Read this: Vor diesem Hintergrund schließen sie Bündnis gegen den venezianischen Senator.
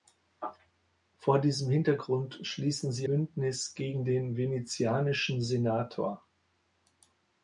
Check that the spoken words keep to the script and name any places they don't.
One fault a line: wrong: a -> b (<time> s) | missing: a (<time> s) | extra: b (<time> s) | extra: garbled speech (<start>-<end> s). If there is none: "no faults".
no faults